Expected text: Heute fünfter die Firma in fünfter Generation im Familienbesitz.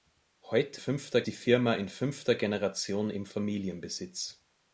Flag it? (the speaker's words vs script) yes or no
no